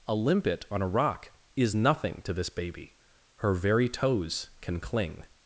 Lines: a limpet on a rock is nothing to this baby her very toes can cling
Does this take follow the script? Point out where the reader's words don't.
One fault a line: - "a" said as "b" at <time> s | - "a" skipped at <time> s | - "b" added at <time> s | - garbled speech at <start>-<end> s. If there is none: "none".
none